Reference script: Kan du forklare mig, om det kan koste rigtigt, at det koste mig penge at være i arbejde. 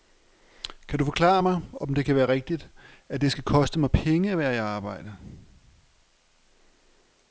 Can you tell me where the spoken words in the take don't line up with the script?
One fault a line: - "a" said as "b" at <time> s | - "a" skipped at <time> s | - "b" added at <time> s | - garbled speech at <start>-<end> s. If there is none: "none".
- "koste" said as "være" at 2.1 s
- "skal" added at 3.3 s